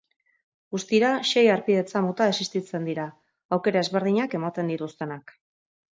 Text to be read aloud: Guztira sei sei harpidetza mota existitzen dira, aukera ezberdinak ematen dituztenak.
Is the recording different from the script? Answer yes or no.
yes